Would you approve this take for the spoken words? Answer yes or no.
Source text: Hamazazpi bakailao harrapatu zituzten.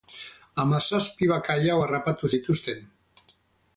yes